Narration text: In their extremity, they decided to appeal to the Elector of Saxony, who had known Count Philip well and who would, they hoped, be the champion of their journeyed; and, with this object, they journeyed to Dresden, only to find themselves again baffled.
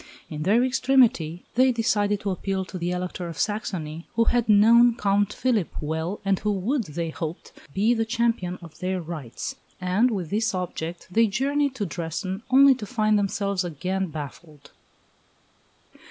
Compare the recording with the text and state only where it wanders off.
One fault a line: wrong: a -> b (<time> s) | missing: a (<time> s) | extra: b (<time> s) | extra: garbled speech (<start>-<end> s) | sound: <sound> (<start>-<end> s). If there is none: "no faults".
wrong: journeyed -> rights (9.0 s)